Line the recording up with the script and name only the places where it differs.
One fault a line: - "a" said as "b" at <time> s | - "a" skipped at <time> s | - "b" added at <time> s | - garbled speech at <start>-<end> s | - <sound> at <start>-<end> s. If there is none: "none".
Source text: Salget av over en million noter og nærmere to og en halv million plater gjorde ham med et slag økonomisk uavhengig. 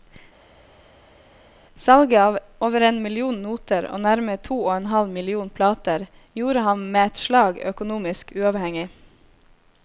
none